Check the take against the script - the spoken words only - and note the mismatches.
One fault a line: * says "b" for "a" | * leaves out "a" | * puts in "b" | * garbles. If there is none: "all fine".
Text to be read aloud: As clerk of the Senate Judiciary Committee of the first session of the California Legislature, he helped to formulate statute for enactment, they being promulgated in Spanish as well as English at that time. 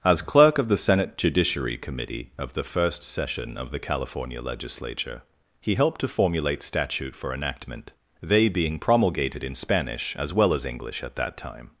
all fine